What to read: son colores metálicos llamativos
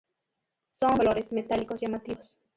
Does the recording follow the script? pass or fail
pass